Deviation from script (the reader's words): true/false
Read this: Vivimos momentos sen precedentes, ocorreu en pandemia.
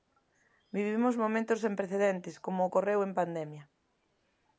true